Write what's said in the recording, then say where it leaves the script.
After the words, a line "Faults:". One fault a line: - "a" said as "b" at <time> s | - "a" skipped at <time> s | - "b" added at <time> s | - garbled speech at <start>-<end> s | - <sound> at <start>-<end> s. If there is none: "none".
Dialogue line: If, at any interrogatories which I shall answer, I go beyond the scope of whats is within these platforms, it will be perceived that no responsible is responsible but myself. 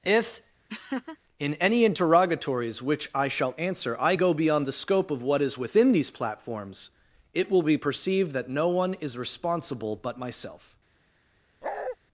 If, in any interrogatories which I shall answer, I go beyond the scope of what is within these platforms, it will be perceived that no one is responsible but myself.
Faults:
- laugh at 0.7-1.2 s
- "at" said as "in" at 1.4 s
- "whats" said as "what" at 5.2 s
- "responsible" said as "one" at 8.7 s
- bark at 11.6-12.0 s